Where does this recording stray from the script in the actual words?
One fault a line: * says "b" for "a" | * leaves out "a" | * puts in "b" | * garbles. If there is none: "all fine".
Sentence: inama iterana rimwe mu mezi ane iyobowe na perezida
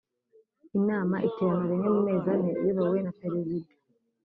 all fine